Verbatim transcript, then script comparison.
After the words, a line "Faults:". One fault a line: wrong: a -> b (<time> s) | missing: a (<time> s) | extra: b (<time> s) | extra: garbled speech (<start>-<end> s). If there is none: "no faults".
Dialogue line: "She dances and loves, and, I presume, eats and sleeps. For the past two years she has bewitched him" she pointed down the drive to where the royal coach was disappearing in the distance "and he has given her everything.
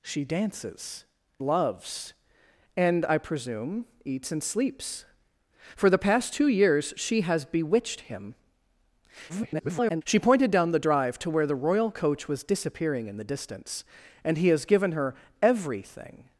"She dances loves, and, I presume, eats and sleeps. For the past two years she has bewitched him" [garbled] she pointed down the drive to where the royal coach was disappearing in the distance "and he has given her everything.
Faults:
missing: and (1.1 s)
extra: garbled speech (9.3-10.0 s)